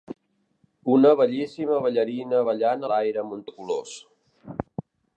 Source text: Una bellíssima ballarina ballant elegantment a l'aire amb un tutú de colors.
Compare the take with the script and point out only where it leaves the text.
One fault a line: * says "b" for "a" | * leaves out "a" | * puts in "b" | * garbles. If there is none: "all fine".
* leaves out "elegantment"
* leaves out "tutú"